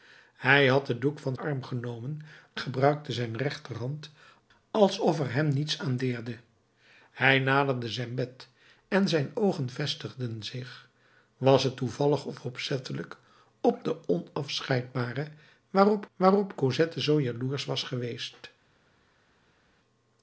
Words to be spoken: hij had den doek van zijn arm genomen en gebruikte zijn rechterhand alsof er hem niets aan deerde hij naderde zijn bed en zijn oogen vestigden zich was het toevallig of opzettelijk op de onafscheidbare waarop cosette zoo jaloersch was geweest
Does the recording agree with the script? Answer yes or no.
no